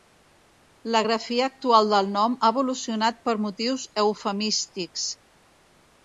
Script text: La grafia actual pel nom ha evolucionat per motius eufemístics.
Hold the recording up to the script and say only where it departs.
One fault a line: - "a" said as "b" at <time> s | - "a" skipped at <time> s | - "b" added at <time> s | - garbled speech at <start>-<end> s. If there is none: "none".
- "pel" said as "del" at 1.9 s